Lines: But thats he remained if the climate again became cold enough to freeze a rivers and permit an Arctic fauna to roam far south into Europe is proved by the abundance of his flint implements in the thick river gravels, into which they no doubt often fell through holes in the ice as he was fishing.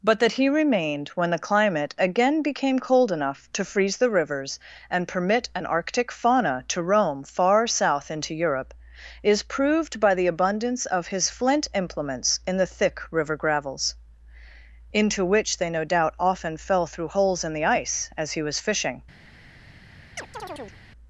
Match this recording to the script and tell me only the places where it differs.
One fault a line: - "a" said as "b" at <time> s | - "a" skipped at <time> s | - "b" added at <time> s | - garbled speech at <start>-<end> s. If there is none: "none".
- "thats" said as "that" at 0.2 s
- "if" said as "when" at 1.1 s
- "a" said as "the" at 4.0 s